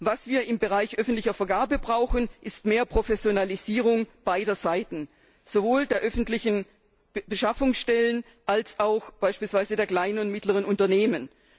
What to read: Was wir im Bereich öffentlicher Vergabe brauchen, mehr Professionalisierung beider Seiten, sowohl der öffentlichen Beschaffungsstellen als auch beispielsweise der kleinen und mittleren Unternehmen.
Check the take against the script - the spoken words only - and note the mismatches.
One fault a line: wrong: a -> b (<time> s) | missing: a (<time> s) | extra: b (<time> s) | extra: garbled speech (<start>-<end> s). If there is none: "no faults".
extra: ist (2.4 s)